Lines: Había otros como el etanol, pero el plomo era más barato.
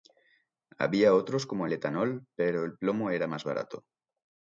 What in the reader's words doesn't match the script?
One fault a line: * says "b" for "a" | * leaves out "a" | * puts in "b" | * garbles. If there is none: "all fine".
all fine